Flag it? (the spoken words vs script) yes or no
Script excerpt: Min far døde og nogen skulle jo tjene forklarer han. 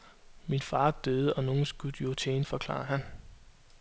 no